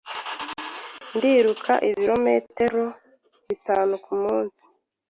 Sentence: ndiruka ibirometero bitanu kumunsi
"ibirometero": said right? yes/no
yes